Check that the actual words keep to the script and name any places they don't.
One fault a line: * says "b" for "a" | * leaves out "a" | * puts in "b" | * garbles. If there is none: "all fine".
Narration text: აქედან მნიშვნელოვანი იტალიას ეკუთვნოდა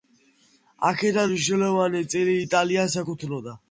* puts in "წილი"